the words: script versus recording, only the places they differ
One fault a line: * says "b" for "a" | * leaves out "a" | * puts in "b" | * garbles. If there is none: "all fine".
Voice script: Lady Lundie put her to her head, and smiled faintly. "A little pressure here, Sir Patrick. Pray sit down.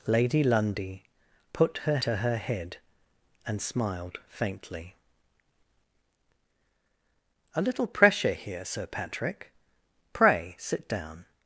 all fine